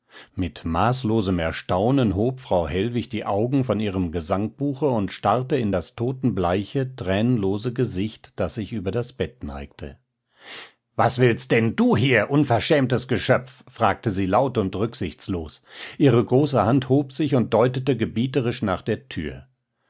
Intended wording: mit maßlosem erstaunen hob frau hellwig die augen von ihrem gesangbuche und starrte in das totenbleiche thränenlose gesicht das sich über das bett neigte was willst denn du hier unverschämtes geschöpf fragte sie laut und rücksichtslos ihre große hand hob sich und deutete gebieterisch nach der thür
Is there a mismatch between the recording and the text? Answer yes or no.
no